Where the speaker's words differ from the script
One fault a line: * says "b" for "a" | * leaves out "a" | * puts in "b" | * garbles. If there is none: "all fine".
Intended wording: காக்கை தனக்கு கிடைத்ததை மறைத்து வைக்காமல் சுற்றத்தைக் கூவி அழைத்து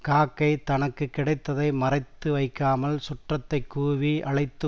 all fine